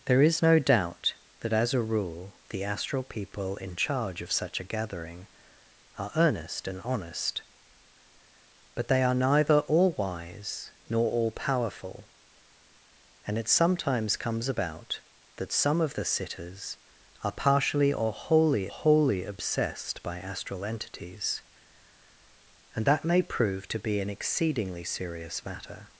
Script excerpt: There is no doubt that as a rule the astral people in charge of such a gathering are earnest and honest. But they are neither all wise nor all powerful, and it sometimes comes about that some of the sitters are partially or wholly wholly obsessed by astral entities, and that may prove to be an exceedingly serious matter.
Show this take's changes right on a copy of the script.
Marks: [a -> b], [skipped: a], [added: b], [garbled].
There is no doubt that as a rule the astral people in charge of such a gathering are earnest and honest. But they are neither all wise nor all powerful, and it sometimes comes about that some of the sitters are partially or wholly wholly obsessed by astral entities, and that may prove to be an exceedingly serious matter.